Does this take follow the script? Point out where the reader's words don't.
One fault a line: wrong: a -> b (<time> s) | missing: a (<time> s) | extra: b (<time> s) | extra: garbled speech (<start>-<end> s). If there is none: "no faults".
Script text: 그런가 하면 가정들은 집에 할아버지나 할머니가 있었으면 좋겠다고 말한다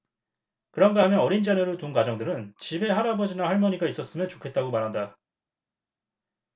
extra: 어린 자녀를 둔 (1.2 s)